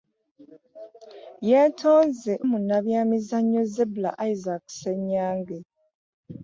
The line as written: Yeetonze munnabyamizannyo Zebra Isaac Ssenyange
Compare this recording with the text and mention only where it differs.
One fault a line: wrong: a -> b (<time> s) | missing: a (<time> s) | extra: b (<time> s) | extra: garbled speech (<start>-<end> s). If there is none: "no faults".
no faults